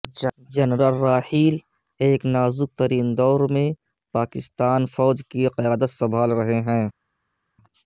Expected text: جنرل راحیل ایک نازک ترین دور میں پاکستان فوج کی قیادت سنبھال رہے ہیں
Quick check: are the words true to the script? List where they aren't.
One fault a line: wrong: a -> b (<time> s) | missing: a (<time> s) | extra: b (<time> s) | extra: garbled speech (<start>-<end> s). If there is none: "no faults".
no faults